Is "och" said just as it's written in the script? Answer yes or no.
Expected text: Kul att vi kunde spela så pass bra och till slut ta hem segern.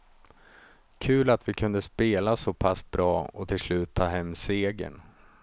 yes